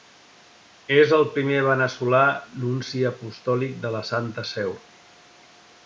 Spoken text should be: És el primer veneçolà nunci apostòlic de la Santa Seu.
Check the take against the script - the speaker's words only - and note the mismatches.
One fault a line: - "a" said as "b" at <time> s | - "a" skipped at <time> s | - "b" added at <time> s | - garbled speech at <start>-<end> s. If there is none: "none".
none